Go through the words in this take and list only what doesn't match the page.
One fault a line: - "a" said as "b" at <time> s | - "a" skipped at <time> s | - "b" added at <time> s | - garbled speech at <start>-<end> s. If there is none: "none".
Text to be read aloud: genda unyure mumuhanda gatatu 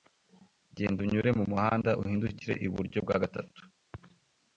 - "uhindukire iburyo bwa" added at 2.0 s